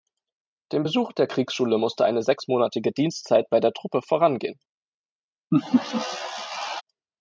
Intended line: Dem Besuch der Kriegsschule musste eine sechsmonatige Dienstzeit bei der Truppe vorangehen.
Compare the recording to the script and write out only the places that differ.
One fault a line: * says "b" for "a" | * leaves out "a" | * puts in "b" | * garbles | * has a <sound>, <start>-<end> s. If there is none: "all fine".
* has a laugh, 5.5-6.8 s